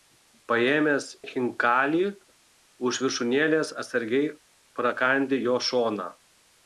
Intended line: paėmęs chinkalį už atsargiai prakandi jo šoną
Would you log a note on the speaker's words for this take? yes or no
yes